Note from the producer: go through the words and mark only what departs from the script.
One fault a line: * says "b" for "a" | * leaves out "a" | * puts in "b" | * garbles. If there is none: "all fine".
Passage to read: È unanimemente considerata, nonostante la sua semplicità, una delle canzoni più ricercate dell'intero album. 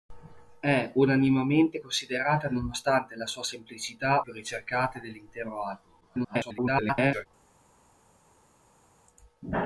* leaves out "una delle canzoni"
* garbles